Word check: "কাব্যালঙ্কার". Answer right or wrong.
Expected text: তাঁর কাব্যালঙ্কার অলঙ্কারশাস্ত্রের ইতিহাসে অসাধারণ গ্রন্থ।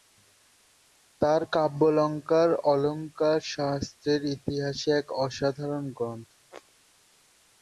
right